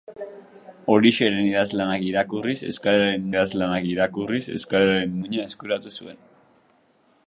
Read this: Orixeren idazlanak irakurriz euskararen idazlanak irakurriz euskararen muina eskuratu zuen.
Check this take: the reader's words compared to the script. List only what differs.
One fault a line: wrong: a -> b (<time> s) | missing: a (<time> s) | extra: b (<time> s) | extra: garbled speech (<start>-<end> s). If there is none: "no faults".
no faults